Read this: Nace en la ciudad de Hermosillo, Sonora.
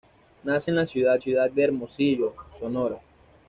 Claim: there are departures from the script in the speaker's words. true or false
true